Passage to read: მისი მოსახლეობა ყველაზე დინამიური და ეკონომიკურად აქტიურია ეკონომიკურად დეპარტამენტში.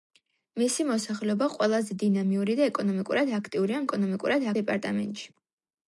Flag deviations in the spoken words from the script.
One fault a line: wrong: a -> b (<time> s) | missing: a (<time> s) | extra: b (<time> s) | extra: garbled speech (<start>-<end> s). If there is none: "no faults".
no faults